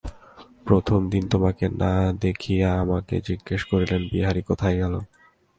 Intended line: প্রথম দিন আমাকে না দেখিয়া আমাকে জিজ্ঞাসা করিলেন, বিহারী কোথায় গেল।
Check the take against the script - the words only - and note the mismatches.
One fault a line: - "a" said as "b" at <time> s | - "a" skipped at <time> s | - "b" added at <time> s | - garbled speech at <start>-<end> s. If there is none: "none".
- "আমাকে" said as "তোমাকে" at 1.3 s